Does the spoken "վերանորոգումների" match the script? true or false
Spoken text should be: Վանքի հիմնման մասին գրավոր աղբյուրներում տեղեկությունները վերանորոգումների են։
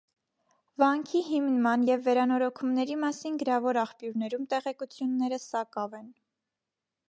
false